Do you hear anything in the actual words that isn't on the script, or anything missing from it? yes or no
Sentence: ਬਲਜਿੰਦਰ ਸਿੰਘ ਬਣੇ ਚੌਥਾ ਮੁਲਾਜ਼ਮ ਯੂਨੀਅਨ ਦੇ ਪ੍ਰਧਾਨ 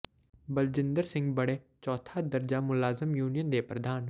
yes